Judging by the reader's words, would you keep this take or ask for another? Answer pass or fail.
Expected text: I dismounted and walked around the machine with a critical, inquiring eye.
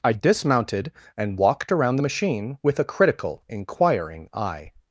pass